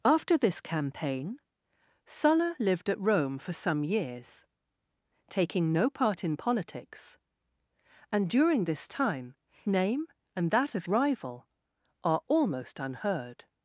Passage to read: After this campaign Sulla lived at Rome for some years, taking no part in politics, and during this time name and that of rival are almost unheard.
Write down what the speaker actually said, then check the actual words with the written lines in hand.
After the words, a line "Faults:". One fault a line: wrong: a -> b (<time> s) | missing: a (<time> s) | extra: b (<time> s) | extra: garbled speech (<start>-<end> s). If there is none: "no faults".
After this campaign Sulla lived at Rome for some years, taking no part in politics, and during this time name and that of rival are almost unheard.
Faults:
no faults